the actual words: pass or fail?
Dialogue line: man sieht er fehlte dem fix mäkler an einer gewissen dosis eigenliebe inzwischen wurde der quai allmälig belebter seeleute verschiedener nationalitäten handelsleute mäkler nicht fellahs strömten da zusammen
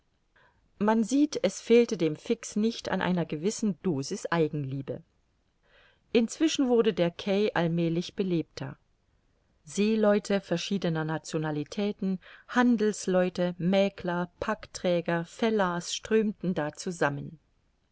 fail